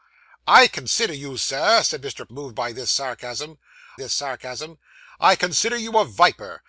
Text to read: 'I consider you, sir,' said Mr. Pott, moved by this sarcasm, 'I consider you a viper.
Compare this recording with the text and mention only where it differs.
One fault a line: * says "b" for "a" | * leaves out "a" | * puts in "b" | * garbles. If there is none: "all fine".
* leaves out "Pott"
* puts in "this sarcasm"